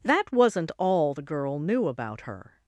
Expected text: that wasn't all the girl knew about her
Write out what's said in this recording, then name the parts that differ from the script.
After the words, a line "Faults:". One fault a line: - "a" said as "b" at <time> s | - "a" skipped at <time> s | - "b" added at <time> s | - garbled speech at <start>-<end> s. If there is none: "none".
that wasn't all the girl knew about her
Faults:
none